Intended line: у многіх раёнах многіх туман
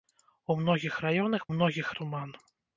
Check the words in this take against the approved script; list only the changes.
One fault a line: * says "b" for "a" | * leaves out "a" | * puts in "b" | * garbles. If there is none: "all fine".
all fine